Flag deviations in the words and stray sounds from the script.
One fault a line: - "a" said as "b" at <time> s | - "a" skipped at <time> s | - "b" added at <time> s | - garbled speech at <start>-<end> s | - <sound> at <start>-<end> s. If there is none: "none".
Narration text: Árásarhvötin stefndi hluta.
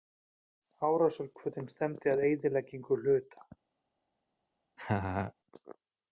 - "að eyðileggingu" added at 2.1 s
- laugh at 4.8-5.3 s